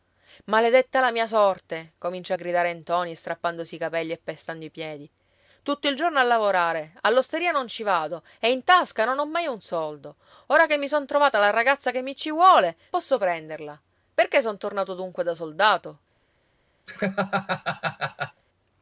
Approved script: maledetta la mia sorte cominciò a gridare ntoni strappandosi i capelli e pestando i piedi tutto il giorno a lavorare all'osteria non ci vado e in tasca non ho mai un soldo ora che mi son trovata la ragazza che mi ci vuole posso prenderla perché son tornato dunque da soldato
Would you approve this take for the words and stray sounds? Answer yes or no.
no